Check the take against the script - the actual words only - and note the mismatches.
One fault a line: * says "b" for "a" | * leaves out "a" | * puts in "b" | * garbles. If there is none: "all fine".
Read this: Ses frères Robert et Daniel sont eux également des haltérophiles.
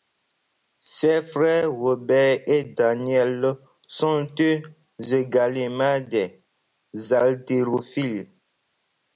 all fine